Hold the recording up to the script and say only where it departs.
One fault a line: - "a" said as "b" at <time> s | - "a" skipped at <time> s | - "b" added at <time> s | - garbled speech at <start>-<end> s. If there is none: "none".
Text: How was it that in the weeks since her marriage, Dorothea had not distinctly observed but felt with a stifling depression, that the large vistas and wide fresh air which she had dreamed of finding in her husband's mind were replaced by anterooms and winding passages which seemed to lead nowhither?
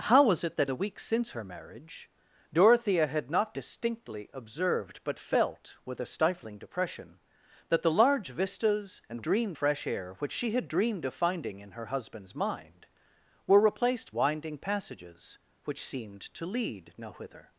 - "in" skipped at 0.7 s
- "wide" said as "dreamed" at 9.2 s
- "by anterooms and" skipped at 14.1 s